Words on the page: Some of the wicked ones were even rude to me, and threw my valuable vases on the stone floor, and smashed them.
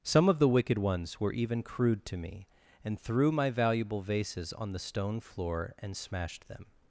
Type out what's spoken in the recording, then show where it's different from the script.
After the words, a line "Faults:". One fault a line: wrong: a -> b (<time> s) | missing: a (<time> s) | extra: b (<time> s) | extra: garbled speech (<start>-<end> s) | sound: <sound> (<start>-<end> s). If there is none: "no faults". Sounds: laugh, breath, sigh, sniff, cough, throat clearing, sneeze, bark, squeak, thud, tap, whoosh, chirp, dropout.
Some of the wicked ones were even crude to me, and threw my valuable vases on the stone floor, and smashed them.
Faults:
wrong: rude -> crude (1.6 s)